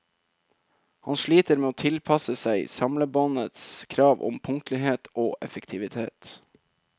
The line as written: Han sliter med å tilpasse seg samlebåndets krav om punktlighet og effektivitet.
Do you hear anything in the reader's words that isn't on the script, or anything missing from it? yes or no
no